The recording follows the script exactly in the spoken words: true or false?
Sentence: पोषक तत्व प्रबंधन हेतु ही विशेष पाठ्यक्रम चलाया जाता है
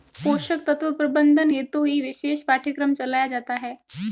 true